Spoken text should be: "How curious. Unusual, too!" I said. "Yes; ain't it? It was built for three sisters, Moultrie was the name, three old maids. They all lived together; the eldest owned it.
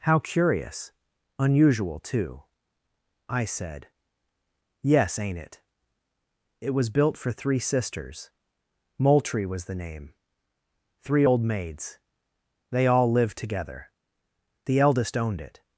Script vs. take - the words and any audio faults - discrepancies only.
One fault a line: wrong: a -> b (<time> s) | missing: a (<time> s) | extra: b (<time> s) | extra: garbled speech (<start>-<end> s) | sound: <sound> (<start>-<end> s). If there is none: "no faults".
no faults